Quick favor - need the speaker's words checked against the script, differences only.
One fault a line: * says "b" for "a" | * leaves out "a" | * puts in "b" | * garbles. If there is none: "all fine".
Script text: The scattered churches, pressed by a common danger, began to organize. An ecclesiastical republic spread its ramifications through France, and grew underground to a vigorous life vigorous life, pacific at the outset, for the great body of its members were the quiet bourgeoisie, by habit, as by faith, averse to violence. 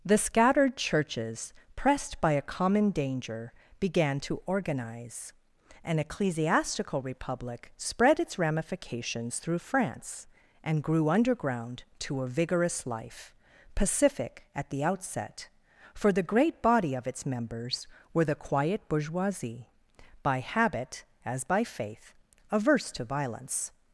* leaves out "vigorous life"